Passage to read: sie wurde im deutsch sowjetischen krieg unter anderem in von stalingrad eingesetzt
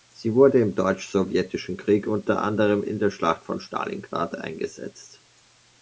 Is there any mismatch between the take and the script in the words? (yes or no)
yes